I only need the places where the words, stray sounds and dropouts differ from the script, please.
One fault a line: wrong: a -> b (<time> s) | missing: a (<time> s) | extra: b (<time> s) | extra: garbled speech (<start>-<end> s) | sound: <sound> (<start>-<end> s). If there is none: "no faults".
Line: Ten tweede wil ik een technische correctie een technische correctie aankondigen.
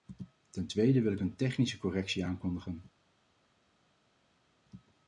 missing: een technische correctie (2.2 s)